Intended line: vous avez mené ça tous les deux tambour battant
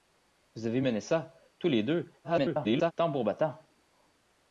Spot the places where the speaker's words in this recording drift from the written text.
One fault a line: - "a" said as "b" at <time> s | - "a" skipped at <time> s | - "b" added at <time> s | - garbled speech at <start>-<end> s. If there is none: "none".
- garbled speech at 2.2-2.9 s